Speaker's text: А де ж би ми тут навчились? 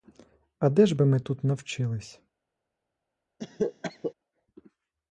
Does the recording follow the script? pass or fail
pass